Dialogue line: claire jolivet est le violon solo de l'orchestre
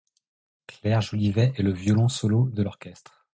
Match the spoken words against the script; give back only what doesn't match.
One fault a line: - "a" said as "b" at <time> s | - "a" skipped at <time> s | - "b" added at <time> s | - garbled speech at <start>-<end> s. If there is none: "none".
none